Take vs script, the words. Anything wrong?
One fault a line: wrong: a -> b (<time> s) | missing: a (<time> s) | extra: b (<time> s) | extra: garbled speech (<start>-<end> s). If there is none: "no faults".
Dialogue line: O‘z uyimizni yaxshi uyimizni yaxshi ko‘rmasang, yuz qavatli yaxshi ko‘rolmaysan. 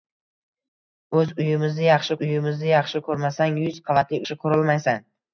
no faults